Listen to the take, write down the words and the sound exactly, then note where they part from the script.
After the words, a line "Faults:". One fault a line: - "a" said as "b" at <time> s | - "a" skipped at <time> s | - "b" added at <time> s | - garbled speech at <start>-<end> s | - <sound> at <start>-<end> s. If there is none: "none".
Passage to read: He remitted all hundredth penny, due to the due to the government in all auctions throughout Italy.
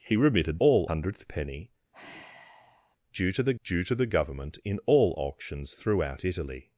He remitted all hundredth penny, due to the due to the government in all auctions throughout Italy.
Faults:
- sigh at 1.9-3.0 s